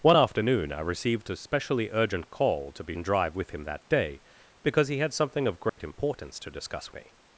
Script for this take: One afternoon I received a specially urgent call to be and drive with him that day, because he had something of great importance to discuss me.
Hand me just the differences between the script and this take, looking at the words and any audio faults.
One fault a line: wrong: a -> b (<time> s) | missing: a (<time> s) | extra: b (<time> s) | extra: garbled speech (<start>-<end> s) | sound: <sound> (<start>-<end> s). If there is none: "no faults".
sound: dropout (5.7-5.8 s)